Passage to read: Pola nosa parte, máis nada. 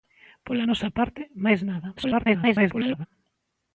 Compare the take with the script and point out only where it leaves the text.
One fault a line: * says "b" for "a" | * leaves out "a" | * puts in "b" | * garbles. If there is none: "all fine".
* garbles